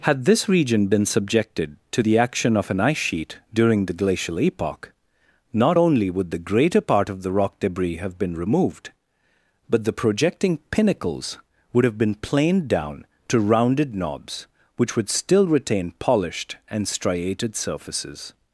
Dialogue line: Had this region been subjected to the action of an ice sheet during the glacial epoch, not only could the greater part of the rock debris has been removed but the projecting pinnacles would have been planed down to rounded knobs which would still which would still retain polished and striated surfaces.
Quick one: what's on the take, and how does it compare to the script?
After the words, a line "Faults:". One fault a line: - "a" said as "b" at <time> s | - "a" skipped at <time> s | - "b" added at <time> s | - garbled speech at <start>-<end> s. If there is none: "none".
Had this region been subjected to the action of an ice sheet during the glacial epoch, not only would the greater part of the rock debris have been removed but the projecting pinnacles would have been planed down to rounded knobs which would still retain polished and striated surfaces.
Faults:
- "could" said as "would" at 6.1 s
- "has" said as "have" at 8.0 s
- "which would still" skipped at 15.5 s